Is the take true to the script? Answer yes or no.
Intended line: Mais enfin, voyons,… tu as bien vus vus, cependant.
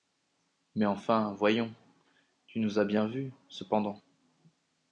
no